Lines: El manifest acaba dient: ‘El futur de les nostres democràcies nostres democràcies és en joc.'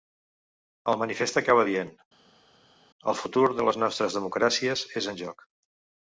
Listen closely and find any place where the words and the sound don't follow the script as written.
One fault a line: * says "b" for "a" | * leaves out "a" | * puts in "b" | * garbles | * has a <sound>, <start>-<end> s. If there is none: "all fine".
* leaves out "nostres democràcies"